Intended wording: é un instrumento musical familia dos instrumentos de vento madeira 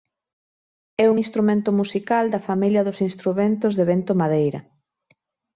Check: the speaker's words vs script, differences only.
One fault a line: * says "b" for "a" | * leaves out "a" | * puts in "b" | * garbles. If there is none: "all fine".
* puts in "da"